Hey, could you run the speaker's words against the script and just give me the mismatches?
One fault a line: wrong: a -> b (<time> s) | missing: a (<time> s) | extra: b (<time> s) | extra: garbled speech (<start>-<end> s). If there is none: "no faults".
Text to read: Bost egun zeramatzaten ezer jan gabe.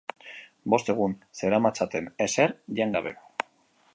no faults